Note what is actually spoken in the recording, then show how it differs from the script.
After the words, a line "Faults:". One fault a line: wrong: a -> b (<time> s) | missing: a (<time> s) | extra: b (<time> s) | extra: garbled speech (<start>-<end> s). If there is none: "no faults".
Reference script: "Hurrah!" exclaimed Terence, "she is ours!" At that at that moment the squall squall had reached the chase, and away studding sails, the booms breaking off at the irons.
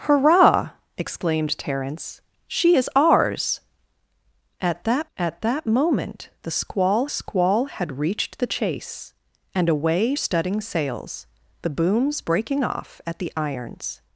"Hurrah!" exclaimed Terence, "she is ours!" At that at that moment the squall squall had reached the chase, and away studding sails, the booms breaking off at the irons.
Faults:
no faults